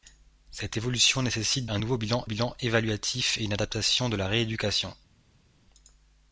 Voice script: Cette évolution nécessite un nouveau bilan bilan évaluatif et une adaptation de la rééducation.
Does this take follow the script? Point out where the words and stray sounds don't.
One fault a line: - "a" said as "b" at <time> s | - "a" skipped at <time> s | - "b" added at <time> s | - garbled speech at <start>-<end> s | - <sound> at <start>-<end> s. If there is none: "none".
none